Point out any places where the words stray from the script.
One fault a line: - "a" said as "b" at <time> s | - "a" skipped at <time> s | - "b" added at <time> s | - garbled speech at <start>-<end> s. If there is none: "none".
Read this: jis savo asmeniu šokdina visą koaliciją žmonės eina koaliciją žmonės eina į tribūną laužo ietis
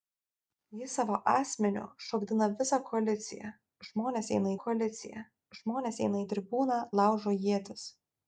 none